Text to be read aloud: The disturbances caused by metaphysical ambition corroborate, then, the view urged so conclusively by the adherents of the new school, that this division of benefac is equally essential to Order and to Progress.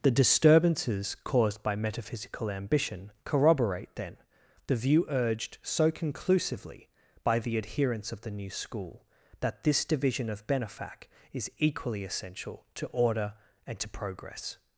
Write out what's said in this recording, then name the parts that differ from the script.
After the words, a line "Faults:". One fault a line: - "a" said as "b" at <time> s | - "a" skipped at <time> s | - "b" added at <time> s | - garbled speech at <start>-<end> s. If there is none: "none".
The disturbances caused by metaphysical ambition corroborate, then, the view urged so conclusively by the adherents of the new school, that this division of benefac is equally essential to Order and to Progress.
Faults:
none